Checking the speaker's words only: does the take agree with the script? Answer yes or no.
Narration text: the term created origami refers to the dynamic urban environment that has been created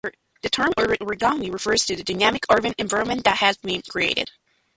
no